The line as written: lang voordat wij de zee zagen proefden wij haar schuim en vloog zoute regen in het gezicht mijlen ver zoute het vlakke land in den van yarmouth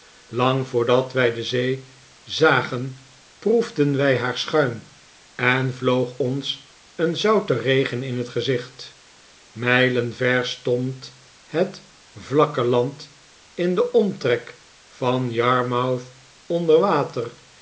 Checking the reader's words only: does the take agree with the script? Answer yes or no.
no